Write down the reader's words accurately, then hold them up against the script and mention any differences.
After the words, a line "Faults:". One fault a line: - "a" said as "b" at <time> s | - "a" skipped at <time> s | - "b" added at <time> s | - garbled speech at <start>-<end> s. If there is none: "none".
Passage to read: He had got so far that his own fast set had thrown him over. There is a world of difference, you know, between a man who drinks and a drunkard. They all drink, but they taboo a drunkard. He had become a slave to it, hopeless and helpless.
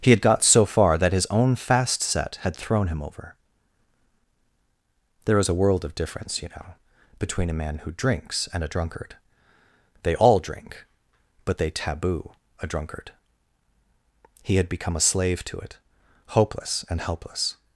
He had got so far that his own fast set had thrown him over. There is a world of difference, you know, between a man who drinks and a drunkard. They all drink, but they taboo a drunkard. He had become a slave to it, hopeless and helpless.
Faults:
none